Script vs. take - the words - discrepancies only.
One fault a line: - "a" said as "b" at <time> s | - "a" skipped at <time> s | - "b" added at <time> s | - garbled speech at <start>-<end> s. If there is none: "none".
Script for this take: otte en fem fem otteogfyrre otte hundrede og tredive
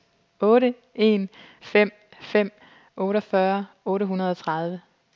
none